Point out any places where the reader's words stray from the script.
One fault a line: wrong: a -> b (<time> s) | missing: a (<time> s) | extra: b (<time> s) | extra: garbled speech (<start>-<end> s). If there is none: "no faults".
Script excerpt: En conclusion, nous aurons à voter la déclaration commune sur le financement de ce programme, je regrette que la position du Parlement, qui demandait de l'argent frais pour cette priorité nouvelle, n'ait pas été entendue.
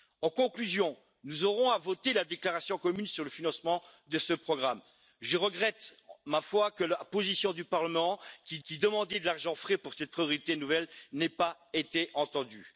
extra: qui (8.6 s)